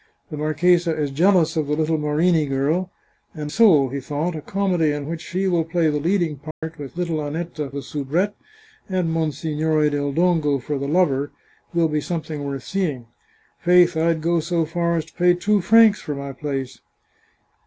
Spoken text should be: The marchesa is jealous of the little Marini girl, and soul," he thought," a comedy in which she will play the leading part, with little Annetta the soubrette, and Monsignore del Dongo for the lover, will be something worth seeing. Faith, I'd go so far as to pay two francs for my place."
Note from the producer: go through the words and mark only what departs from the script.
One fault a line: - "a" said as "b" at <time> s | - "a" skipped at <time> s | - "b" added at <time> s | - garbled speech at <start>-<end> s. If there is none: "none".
none